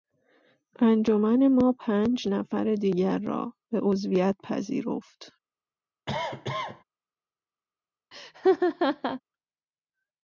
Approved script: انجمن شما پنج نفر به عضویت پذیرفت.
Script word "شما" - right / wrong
wrong